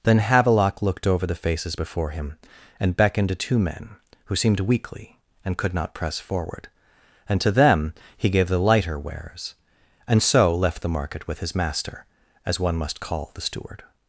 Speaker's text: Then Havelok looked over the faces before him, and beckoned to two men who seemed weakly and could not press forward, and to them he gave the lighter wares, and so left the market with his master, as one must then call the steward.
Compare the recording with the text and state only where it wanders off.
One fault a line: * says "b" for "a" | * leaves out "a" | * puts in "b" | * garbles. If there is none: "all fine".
* leaves out "then"